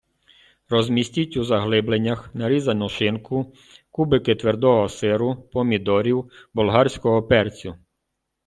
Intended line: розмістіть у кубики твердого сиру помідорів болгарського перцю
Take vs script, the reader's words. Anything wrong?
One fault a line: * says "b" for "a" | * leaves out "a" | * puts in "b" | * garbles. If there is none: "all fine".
* puts in "заглибленнях нарізану шинку"